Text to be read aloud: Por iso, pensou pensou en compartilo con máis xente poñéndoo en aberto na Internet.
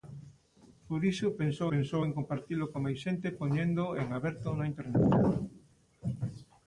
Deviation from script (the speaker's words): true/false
false